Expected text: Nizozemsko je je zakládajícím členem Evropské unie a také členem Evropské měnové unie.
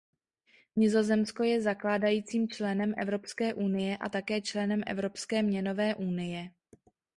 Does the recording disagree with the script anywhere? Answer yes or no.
yes